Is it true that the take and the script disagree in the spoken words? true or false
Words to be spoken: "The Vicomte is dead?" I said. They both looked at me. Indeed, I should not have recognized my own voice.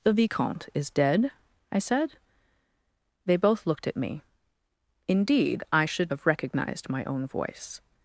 true